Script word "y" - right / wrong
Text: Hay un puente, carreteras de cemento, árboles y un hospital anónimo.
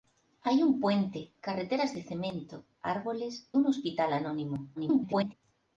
wrong